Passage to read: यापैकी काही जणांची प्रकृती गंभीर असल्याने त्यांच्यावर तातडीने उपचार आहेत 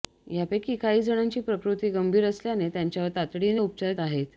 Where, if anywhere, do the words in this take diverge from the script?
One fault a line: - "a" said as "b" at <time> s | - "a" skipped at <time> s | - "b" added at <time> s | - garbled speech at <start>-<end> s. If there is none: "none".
none